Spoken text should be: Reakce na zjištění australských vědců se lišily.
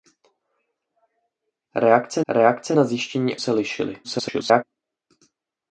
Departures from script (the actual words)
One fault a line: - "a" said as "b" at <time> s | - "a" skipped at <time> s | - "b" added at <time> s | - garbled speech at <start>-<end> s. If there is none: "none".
- "reakce" added at 2.3 s
- "australských vědců" skipped at 3.4 s
- garbled speech at 4.0-4.6 s